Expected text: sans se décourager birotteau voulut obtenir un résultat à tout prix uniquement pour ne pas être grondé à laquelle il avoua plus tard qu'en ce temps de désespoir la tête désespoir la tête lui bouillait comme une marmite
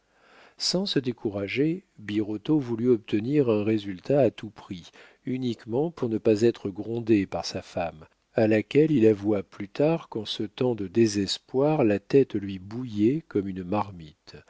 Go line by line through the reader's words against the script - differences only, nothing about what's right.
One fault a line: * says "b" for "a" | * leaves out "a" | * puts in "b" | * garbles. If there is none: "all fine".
* puts in "par sa femme"
* leaves out "désespoir la tête"